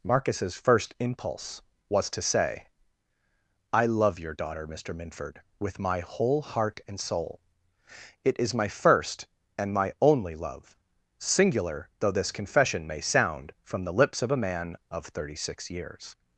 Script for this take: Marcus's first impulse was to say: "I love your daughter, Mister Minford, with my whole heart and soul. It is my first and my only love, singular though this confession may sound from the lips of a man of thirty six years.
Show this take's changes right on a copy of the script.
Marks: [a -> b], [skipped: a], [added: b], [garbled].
Marcus's first impulse was to say: "I love your daughter, Mister Minford, with my whole heart and soul. It is my first and my only love, singular though this confession may sound from the lips of a man of thirty six years.